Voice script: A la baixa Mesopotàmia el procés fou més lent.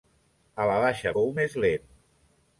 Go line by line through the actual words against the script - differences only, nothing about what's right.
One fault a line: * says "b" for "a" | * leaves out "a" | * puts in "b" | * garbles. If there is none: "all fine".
* leaves out "Mesopotàmia el procés"